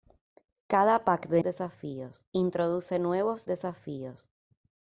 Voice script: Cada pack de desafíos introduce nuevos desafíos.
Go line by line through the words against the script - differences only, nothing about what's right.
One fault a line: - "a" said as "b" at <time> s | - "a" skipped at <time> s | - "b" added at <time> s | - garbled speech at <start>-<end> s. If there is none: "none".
none